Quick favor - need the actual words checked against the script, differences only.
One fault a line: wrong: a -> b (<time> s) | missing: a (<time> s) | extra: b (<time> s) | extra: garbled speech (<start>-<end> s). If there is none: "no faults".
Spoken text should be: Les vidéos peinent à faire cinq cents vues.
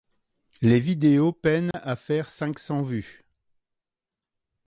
no faults